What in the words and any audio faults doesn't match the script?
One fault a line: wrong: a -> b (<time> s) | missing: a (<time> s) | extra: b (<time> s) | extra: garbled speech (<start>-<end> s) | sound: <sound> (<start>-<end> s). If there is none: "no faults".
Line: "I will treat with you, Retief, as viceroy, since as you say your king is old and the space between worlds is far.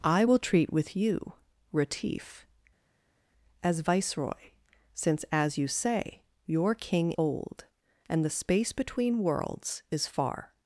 missing: is (7.1 s)